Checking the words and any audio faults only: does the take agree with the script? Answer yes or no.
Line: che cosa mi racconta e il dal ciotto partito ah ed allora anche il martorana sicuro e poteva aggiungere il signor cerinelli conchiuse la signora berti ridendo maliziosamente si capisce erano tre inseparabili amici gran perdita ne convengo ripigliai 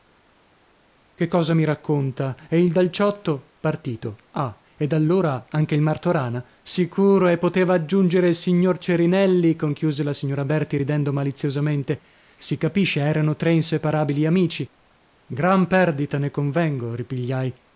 yes